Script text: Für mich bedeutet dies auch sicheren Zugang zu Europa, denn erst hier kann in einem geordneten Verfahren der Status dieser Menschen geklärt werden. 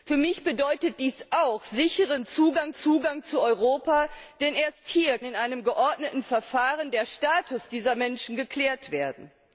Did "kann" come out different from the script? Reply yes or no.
yes